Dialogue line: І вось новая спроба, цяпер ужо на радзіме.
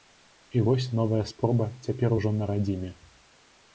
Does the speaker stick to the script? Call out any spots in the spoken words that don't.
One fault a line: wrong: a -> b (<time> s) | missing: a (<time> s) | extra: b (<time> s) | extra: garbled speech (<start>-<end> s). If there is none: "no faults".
no faults